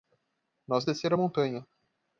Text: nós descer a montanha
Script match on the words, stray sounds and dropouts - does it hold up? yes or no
yes